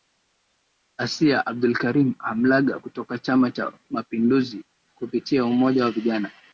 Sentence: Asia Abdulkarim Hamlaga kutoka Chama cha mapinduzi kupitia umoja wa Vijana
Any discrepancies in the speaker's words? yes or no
no